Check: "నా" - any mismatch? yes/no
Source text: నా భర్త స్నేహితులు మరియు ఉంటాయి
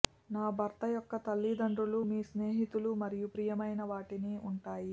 no